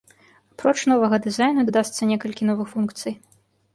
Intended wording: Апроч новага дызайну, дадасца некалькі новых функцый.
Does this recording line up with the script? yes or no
yes